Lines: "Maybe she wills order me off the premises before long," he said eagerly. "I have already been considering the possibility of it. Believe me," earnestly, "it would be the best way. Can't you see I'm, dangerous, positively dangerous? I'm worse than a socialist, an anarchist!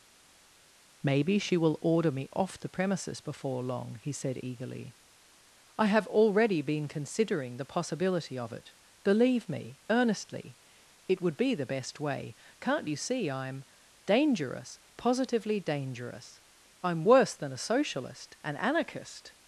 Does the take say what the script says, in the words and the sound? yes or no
no